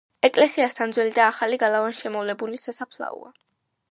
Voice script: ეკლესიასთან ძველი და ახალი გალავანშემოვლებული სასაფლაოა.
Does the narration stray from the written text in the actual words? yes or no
no